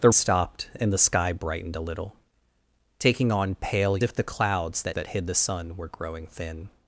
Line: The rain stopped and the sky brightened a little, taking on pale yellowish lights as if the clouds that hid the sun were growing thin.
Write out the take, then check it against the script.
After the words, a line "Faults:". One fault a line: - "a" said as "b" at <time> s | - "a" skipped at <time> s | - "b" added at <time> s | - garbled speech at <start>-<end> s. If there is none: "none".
The stopped and the sky brightened a little, taking on pale if the clouds that that hid the sun were growing thin.
Faults:
- "rain" skipped at 0.1 s
- "yellowish lights as" skipped at 4.0 s
- "that" added at 4.9 s